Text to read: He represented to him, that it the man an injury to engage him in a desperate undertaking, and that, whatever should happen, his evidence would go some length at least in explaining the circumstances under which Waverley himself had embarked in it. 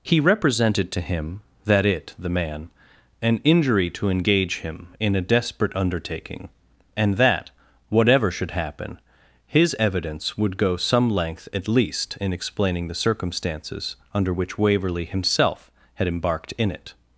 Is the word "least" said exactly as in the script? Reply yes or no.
yes